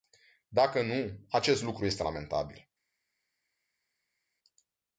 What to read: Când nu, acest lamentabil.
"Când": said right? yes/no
no